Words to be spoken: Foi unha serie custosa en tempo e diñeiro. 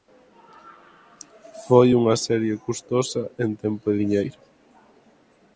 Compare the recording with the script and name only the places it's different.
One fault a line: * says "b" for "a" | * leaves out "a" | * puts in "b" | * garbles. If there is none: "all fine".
all fine